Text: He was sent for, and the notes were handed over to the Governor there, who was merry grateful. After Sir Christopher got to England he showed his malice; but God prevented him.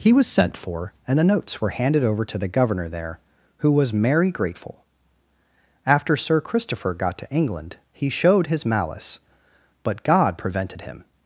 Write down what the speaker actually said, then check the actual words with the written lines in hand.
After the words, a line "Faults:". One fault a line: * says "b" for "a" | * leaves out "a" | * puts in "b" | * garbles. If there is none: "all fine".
He was sent for, and the notes were handed over to the Governor there, who was merry grateful. After Sir Christopher got to England he showed his malice; but God prevented him.
Faults:
all fine